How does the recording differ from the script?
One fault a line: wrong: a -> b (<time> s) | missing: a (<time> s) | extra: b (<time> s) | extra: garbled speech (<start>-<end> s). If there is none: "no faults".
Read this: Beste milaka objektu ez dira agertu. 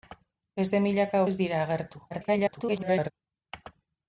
missing: objektu (1.2 s)
extra: garbled speech (2.1-3.1 s)